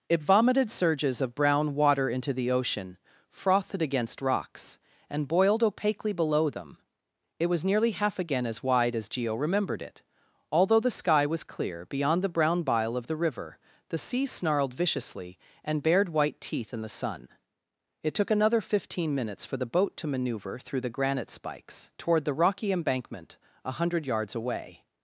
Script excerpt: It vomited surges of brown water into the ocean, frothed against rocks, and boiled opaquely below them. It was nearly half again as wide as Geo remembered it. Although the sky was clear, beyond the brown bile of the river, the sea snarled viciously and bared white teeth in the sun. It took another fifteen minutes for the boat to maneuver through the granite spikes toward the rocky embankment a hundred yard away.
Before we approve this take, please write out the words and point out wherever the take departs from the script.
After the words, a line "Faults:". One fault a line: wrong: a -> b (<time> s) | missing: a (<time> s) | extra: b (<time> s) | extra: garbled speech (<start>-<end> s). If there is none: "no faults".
It vomited surges of brown water into the ocean, frothed against rocks, and boiled opaquely below them. It was nearly half again as wide as Geo remembered it. Although the sky was clear, beyond the brown bile of the river, the sea snarled viciously and bared white teeth in the sun. It took another fifteen minutes for the boat to maneuver through the granite spikes toward the rocky embankment a hundred yards away.
Faults:
wrong: yard -> yards (24.1 s)